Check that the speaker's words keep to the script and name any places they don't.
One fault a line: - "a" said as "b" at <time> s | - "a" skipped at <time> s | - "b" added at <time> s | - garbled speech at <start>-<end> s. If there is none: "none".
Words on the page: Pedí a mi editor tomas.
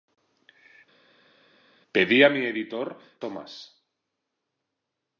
none